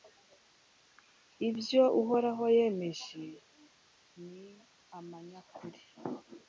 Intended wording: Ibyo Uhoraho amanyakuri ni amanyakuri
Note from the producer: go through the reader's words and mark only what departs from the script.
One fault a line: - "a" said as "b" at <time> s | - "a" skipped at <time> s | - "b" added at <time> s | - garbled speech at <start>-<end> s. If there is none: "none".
- "amanyakuri" said as "yemeje" at 2.6 s